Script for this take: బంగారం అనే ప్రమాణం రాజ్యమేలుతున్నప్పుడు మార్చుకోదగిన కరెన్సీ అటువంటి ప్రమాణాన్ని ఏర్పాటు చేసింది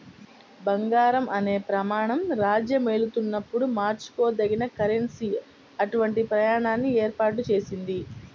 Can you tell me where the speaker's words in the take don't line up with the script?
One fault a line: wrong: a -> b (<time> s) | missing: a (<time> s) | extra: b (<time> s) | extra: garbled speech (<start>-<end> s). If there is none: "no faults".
no faults